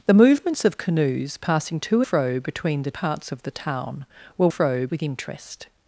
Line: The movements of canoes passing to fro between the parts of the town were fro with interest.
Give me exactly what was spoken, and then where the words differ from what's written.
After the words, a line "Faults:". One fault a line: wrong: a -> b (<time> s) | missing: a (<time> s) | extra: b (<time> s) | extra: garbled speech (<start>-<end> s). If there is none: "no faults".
The movements of canoes passing to fro between the parts of the town were fro with interest.
Faults:
no faults